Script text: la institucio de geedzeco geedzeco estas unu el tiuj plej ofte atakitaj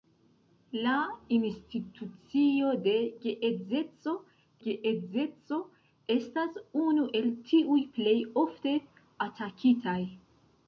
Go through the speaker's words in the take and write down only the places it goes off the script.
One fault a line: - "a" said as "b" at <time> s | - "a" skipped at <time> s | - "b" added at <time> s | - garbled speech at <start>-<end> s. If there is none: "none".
none